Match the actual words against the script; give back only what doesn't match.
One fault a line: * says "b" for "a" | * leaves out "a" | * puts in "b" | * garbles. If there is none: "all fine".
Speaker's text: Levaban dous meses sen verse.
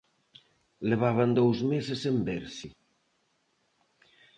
all fine